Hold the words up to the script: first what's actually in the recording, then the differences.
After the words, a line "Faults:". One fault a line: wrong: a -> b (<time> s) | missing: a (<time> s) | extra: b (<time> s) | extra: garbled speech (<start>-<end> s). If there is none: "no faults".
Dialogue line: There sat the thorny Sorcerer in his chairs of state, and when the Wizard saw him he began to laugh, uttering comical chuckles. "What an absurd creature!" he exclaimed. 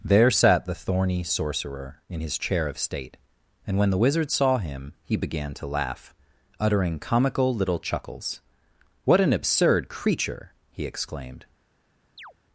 There sat the thorny Sorcerer in his chair of state, and when the Wizard saw him he began to laugh, uttering comical little chuckles. "What an absurd creature!" he exclaimed.
Faults:
wrong: chairs -> chair (2.4 s)
extra: little (7.5 s)